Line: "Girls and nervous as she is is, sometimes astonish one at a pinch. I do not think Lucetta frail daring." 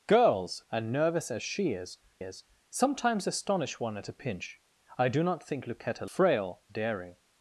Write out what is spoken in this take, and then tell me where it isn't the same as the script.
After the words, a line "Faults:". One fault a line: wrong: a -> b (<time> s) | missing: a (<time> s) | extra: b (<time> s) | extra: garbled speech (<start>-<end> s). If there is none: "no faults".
"Girls and nervous as she is is, sometimes astonish one at a pinch. I do not think Lucetta frail daring."
Faults:
no faults